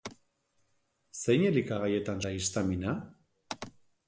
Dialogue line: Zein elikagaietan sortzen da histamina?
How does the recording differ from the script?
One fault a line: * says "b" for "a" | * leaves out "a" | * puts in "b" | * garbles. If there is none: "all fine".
* leaves out "sortzen"